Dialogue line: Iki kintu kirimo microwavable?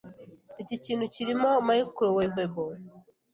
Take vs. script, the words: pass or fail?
pass